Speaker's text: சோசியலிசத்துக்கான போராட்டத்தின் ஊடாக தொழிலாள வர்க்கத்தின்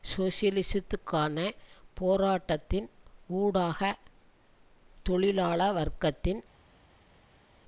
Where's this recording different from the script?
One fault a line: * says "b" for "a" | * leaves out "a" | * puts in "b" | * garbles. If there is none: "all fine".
all fine